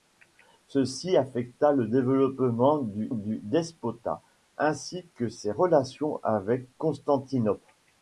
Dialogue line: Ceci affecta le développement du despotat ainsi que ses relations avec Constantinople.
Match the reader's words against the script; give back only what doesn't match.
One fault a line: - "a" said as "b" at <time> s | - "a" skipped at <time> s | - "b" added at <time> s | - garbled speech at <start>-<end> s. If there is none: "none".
- "du" added at 3.1 s